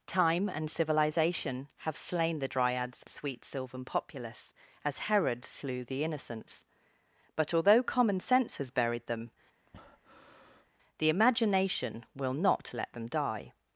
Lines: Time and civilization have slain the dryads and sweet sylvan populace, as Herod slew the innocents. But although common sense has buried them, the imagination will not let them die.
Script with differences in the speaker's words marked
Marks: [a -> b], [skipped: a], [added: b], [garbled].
Time and civilization have slain the dryads [skipped: and] sweet sylvan populace, as Herod slew the innocents. But although common sense has buried them, the imagination will not let them die.